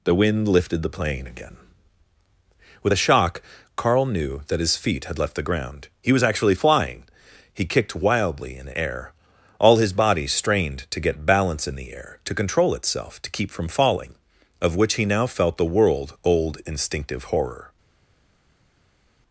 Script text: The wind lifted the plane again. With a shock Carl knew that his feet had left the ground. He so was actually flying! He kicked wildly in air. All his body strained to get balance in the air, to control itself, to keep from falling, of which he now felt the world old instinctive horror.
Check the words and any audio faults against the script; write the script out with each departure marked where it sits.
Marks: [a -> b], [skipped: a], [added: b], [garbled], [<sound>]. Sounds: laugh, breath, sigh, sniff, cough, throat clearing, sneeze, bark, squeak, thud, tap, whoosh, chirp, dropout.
The wind lifted the plane again. With a shock Carl knew that his feet had left the ground. He [skipped: so] was actually flying! He kicked wildly in air. All his body strained to get balance in the air, to control itself, to keep from falling, of which he now felt the world old instinctive horror.